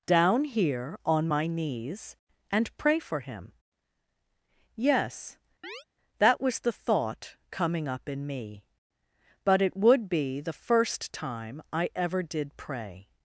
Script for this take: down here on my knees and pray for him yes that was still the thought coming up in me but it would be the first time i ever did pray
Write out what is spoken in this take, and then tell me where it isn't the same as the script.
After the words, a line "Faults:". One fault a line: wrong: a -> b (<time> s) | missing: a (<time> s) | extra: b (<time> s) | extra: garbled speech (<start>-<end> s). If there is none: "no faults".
down here on my knees and pray for him yes that was the thought coming up in me but it would be the first time i ever did pray
Faults:
missing: still (6.6 s)